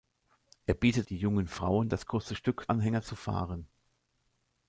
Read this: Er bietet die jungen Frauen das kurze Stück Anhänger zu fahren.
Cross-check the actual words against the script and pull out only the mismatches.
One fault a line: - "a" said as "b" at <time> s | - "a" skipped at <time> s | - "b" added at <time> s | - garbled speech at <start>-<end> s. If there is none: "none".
none